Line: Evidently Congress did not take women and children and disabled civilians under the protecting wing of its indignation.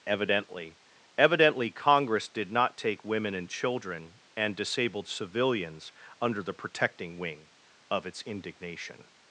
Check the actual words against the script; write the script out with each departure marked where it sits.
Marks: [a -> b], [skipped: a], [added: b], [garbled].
Evidently [added: evidently] Congress did not take women and children and disabled civilians under the protecting wing of its indignation.